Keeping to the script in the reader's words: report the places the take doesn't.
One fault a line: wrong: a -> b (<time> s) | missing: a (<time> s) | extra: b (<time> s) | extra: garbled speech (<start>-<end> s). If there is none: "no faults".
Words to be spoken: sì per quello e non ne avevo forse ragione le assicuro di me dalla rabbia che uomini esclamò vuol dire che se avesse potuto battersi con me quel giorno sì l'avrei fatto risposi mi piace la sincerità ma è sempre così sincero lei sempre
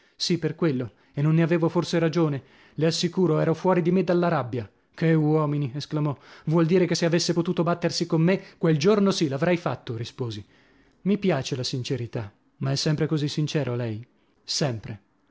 extra: ero fuori (3.4 s)